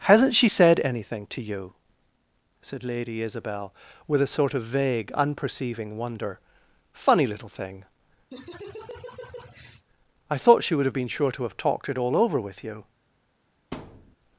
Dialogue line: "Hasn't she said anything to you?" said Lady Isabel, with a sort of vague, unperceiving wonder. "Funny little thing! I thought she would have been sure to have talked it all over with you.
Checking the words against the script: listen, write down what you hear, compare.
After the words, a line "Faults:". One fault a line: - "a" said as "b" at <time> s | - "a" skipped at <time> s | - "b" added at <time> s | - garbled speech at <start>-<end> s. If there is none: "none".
"Hasn't she said anything to you?" said Lady Isabel, with a sort of vague, unperceiving wonder. "Funny little thing! I thought she would have been sure to have talked it all over with you.
Faults:
none